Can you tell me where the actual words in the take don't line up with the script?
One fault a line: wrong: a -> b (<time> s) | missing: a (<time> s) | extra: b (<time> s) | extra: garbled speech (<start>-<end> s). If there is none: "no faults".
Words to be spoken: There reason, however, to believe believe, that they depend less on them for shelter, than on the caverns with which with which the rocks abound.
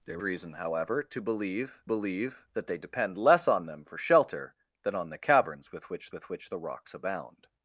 no faults